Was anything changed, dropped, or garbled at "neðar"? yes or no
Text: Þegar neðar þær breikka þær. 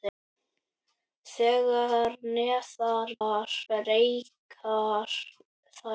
no